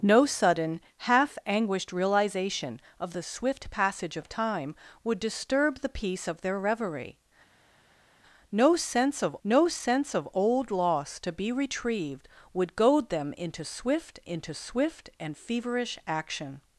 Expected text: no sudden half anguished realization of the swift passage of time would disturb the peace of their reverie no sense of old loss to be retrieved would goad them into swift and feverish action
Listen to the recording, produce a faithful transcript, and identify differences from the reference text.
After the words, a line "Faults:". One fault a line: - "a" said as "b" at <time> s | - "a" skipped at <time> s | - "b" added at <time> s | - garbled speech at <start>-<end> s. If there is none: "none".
no sudden half anguished realization of the swift passage of time would disturb the peace of their reverie no sense of no sense of old loss to be retrieved would goad them into swift into swift and feverish action
Faults:
- "no sense of" added at 9.4 s
- "into swift" added at 14.2 s